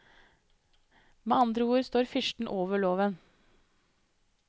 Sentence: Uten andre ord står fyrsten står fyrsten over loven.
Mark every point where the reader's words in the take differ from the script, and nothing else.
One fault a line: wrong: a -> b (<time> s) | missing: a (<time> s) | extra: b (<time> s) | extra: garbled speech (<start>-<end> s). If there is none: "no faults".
wrong: Uten -> Med (1.2 s)
missing: står fyrsten (2.5 s)